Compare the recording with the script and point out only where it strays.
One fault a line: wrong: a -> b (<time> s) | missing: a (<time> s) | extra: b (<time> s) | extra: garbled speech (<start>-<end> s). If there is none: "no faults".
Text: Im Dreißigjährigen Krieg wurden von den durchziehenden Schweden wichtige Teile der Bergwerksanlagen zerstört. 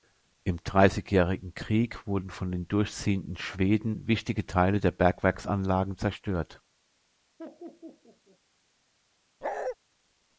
no faults